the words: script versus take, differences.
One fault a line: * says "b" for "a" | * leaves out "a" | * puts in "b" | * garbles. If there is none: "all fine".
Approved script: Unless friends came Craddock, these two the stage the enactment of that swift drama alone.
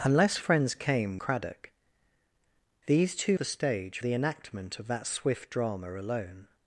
all fine